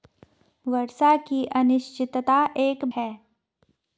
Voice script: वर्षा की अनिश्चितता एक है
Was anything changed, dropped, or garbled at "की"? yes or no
no